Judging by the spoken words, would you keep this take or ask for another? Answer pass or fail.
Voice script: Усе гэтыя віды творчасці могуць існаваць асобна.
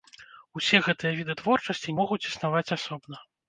pass